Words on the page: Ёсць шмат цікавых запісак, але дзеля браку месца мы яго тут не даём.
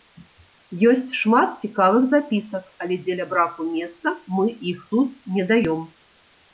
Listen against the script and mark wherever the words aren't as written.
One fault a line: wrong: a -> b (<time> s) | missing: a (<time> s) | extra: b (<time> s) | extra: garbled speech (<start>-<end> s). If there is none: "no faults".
wrong: яго -> іх (4.7 s)